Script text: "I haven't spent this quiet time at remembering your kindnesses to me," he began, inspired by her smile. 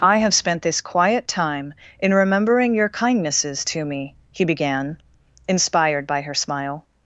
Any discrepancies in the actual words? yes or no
yes